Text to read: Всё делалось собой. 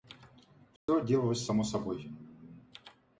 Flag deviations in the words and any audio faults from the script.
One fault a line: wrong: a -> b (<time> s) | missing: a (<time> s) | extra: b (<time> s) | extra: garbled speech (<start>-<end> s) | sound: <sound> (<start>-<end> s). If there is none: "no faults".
sound: dropout (0.8-0.9 s)
extra: само (1.4 s)